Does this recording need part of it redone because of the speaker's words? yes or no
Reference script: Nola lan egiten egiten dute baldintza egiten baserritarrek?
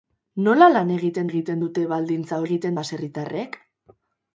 no